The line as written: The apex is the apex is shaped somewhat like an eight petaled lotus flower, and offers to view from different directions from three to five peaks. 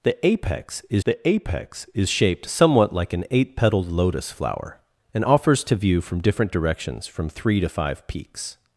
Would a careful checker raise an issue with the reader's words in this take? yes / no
no